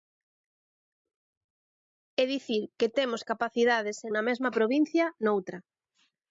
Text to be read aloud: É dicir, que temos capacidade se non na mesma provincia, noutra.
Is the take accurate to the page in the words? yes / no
no